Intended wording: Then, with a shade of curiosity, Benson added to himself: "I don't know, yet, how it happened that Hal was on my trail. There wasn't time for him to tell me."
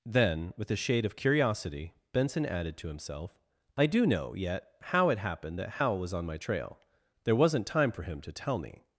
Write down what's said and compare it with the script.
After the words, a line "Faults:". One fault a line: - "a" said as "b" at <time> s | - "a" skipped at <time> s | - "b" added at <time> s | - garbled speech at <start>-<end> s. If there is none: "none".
Then, with a shade of curiosity, Benson added to himself: "I do know, yet, how it happened that Hal was on my trail. There wasn't time for him to tell me."
Faults:
- "don't" said as "do" at 3.9 s